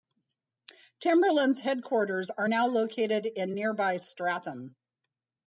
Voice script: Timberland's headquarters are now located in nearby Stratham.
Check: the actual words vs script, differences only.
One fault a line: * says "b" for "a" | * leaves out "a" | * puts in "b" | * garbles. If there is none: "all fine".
all fine